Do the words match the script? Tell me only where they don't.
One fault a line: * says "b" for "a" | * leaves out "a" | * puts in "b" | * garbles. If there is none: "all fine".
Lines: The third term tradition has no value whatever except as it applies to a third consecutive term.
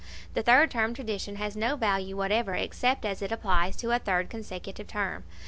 all fine